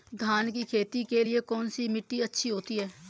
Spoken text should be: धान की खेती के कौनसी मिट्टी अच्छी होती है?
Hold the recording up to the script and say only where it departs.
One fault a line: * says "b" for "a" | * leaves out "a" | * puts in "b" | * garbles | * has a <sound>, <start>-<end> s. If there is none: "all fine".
* puts in "लिए"